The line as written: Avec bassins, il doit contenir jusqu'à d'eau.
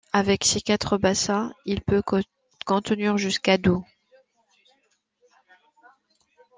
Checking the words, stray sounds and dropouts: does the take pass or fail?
fail